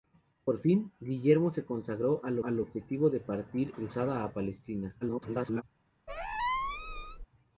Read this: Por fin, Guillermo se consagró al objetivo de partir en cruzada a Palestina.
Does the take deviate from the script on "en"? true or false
true